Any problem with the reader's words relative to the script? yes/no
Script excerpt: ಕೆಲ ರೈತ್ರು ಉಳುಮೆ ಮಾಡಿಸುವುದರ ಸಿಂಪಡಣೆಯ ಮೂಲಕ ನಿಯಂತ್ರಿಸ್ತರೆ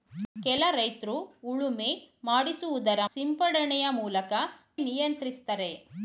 no